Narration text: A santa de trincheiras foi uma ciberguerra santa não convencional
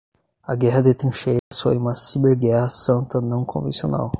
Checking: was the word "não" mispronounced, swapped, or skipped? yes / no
no